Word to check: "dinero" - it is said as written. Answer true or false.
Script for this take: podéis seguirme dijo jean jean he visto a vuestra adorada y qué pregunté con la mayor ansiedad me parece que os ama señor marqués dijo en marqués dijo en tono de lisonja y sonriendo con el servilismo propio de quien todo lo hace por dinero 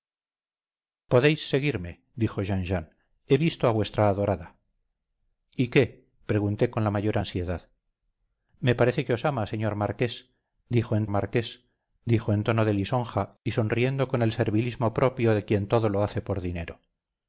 true